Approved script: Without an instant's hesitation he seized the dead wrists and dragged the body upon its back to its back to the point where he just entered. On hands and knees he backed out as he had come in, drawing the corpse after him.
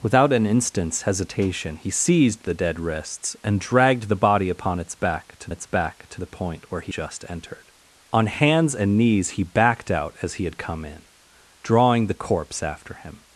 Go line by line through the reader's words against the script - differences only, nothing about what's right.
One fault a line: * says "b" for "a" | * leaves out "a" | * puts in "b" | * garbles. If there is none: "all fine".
all fine